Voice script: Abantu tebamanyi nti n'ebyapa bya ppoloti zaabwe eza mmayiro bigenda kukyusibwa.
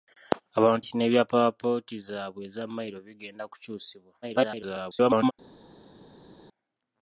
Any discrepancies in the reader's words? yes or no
yes